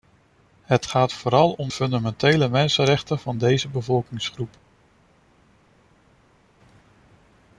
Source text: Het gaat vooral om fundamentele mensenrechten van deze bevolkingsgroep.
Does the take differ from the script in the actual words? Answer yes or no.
no